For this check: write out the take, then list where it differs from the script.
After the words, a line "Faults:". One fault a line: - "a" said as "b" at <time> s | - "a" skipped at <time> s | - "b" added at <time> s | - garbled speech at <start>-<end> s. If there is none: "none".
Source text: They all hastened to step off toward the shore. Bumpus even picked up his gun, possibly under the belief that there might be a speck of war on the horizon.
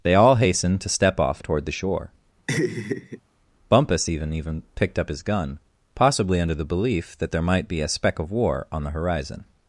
They all hastened to step off toward the shore. Bumpus even even picked up his gun, possibly under the belief that there might be a speck of war on the horizon.
Faults:
- "even" added at 4.3 s